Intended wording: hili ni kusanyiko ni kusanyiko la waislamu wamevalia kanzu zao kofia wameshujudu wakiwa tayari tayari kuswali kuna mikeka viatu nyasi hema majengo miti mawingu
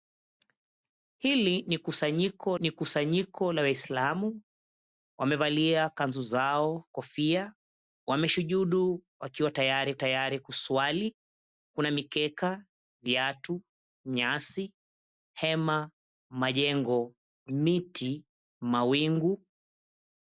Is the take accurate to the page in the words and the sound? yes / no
yes